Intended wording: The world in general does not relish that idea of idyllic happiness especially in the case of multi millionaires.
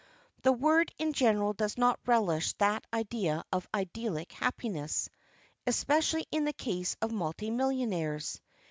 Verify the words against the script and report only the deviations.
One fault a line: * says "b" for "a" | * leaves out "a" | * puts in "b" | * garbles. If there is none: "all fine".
all fine